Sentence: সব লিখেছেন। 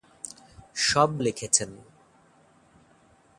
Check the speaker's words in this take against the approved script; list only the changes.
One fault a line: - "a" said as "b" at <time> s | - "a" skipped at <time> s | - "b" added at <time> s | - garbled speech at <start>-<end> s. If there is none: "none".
none